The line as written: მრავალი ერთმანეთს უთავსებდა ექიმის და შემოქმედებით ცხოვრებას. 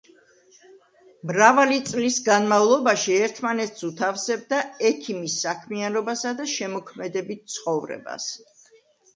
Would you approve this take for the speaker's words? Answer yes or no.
no